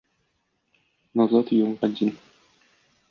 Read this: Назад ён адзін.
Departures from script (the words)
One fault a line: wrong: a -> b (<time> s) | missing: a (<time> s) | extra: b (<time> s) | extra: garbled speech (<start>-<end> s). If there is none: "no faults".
no faults